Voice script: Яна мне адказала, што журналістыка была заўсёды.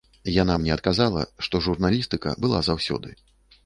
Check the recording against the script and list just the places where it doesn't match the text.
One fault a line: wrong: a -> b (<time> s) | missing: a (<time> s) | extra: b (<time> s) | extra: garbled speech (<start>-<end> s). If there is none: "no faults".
no faults